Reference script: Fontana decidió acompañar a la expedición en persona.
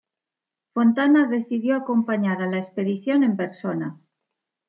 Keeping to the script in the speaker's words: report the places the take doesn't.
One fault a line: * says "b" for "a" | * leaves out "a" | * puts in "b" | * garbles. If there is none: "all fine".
all fine